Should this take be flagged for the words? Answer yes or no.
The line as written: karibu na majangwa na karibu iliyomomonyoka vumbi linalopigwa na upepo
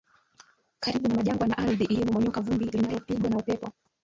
yes